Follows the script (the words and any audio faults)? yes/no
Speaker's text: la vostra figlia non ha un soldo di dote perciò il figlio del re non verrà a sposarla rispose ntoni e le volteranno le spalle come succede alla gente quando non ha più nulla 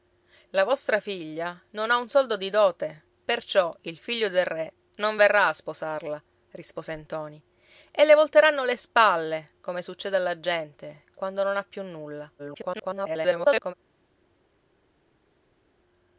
no